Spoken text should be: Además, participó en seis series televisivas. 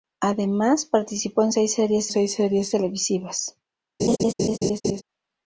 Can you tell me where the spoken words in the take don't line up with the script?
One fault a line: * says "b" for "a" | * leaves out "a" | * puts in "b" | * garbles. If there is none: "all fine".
* puts in "seis series"